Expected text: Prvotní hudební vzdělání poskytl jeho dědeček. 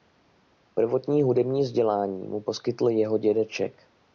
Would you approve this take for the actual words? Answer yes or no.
no